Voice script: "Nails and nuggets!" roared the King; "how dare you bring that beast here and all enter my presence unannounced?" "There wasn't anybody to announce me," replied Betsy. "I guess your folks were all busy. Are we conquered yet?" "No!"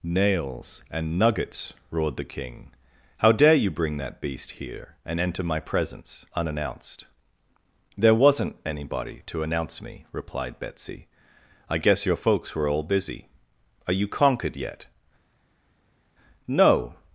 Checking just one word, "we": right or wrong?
wrong